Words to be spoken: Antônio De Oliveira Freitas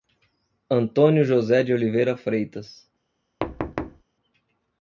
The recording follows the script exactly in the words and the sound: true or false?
false